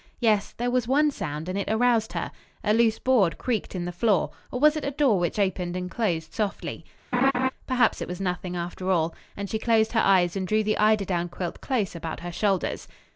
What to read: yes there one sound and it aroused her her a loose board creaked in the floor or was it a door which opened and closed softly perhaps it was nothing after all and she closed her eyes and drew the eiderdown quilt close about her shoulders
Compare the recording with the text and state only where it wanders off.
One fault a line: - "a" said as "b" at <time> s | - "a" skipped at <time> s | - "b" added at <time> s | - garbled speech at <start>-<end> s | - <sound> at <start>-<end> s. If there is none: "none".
- "was" added at 0.7 s
- "her" skipped at 2.3 s
- laugh at 7.1-7.5 s